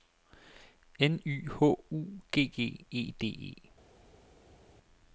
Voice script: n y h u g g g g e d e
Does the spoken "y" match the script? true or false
true